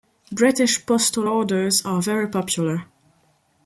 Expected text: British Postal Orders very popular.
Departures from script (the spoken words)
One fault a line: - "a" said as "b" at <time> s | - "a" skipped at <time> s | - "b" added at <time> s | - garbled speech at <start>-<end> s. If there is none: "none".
- "are" added at 1.8 s